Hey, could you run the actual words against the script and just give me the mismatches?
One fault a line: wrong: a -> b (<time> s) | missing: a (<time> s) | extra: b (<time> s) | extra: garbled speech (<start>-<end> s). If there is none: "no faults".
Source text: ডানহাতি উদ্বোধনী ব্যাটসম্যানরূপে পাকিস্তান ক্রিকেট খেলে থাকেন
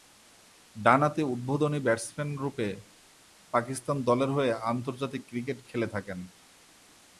extra: দলের হয়ে আন্তর্জাতিক (4.0 s)